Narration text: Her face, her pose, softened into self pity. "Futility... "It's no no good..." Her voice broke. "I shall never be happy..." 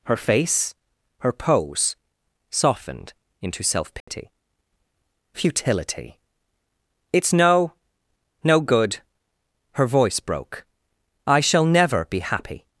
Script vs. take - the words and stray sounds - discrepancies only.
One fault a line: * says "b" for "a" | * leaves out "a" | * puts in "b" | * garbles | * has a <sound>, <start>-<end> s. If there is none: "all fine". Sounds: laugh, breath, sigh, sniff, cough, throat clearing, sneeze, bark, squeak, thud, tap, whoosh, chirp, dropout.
* has a dropout, 4.0-4.1 s